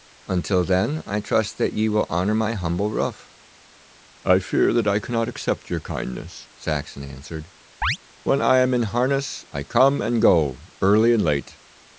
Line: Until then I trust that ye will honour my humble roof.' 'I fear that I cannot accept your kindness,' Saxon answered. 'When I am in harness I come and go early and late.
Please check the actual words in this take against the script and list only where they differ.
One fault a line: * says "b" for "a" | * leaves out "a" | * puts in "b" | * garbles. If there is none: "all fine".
all fine